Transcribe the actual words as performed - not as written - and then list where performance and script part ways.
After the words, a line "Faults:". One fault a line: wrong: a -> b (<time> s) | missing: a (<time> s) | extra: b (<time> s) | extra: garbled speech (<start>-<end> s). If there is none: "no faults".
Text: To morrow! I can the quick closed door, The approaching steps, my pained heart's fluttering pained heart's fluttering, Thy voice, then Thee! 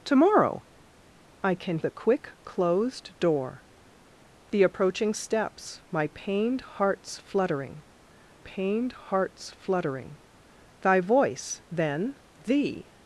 To morrow! I can the quick closed door, The approaching steps, my pained heart's fluttering pained heart's fluttering, Thy voice, then Thee!
Faults:
no faults